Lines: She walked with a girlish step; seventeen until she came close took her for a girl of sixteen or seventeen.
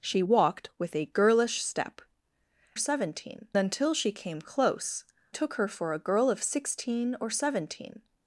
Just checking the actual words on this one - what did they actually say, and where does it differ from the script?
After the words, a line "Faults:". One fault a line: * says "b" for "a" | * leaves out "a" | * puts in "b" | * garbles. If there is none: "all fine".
She walked with a girlish step; seventeen until she came close took her for a girl of sixteen or seventeen.
Faults:
all fine